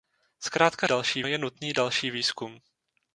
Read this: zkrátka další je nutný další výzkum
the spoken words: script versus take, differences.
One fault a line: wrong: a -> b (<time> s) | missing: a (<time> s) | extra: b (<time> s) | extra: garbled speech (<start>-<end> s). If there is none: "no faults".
no faults